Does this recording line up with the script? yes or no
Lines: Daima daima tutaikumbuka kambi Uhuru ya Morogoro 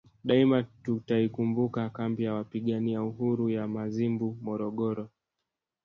no